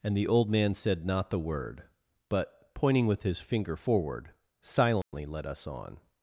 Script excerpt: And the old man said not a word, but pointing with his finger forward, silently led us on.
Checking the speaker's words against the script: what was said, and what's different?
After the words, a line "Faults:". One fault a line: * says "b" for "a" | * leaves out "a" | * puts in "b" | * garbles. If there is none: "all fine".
And the old man said not the word, but pointing with his finger forward, silently led us on.
Faults:
* says "the" for "a"